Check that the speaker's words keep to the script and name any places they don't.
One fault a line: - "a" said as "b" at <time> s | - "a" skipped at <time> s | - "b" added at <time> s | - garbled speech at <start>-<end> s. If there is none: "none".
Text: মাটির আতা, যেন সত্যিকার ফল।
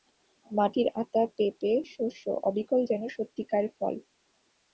- "পেঁপে শস্য অবিকল" added at 1.4 s